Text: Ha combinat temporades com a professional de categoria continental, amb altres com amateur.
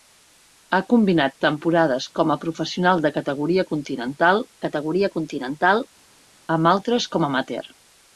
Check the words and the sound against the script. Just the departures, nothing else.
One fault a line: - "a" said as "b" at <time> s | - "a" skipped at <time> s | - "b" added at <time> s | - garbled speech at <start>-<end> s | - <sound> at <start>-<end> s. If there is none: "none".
- "categoria continental" added at 4.7 s